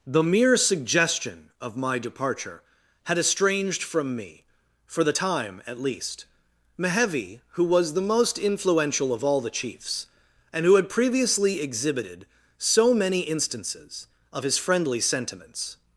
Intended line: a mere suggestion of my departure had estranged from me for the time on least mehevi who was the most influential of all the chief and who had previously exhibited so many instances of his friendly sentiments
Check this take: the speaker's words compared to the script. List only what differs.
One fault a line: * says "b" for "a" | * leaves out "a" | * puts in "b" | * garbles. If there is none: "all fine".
* says "the" for "a"
* says "at" for "on"
* says "chiefs" for "chief"